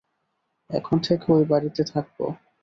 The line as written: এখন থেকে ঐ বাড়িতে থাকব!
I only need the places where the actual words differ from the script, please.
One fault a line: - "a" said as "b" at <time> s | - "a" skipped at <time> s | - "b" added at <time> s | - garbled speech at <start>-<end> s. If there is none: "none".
none